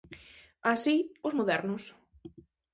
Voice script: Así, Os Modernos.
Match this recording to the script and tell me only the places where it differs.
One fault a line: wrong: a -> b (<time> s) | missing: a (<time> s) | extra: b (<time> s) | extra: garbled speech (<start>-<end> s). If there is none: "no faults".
no faults